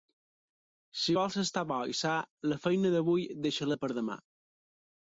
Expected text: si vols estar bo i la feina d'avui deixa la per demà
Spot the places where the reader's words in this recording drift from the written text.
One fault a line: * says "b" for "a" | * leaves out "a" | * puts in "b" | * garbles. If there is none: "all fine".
* puts in "sa"